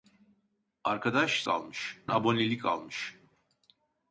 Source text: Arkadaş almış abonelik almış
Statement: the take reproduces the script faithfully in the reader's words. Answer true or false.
true